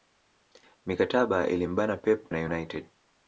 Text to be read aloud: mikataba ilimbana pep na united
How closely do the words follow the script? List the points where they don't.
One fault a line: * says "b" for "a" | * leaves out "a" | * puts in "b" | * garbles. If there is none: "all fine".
all fine